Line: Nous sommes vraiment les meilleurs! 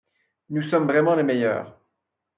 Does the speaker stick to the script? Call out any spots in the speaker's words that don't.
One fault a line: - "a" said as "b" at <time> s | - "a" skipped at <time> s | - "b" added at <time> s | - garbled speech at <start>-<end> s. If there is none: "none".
none